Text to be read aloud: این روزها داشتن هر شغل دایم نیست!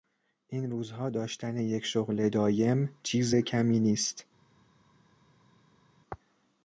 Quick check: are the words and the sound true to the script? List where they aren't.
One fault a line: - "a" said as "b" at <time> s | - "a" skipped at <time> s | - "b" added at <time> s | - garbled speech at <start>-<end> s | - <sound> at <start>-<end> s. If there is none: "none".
- "هر" said as "یک" at 1.6 s
- "چیز کمی" added at 3.0 s